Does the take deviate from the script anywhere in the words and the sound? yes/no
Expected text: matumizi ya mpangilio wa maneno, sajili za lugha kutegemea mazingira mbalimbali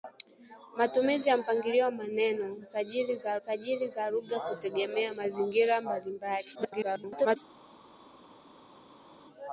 yes